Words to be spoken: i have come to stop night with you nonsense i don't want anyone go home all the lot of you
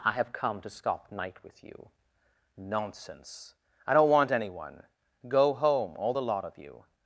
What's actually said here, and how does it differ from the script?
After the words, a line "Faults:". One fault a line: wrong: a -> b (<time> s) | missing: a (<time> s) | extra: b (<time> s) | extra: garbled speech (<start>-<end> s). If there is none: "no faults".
i have come to stop night with you nonsense i don't want anyone go home all the lot of you
Faults:
no faults